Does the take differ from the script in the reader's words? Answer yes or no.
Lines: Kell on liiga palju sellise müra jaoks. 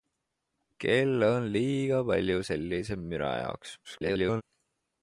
yes